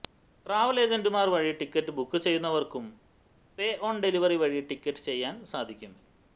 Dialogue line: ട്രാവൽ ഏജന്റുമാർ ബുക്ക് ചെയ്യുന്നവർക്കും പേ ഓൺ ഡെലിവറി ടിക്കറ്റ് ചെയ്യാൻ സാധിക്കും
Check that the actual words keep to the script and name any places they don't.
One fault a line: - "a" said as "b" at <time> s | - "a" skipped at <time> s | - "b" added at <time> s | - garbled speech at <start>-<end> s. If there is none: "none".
- "വഴി ടിക്കറ്റ്" added at 1.3 s
- "വഴി" added at 4.3 s